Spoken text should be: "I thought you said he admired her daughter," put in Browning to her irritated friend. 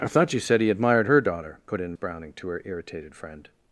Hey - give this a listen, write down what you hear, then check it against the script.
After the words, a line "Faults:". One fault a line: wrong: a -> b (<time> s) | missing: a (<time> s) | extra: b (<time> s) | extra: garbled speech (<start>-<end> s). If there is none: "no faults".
"I thought you said he admired her daughter," put in Browning to her irritated friend.
Faults:
no faults